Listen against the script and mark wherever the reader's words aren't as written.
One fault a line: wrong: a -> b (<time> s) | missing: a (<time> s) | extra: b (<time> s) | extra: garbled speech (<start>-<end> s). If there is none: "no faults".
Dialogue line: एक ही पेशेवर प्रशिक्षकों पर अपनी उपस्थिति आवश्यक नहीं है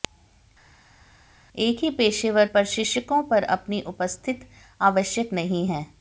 no faults